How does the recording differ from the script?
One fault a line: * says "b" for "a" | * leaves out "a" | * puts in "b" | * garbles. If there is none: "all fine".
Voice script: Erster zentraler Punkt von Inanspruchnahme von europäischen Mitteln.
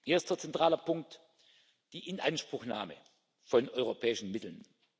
* says "die" for "von"